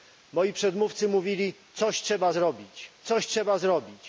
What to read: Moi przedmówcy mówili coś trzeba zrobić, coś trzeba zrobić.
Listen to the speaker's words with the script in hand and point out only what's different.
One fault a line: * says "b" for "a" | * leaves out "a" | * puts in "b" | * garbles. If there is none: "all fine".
all fine